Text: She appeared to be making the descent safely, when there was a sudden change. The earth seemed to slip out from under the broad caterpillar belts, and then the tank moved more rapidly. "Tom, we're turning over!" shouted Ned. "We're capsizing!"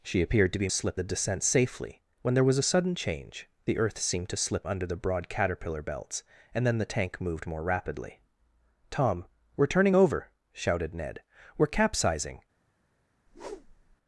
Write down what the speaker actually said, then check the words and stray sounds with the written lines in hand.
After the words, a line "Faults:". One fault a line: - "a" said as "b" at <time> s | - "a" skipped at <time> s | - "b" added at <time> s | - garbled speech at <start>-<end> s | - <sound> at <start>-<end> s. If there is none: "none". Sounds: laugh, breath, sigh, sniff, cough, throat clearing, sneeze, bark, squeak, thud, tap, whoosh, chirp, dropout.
She appeared to be slip the descent safely, when there was a sudden change. The earth seemed to slip under the broad caterpillar belts, and then the tank moved more rapidly. "Tom, we're turning over!" shouted Ned. "We're capsizing!"
Faults:
- "making" said as "slip" at 0.7 s
- "out from" skipped at 4.7 s
- whoosh at 13.3-14.0 s